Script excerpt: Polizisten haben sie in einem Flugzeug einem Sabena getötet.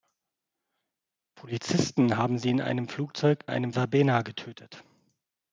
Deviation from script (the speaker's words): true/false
false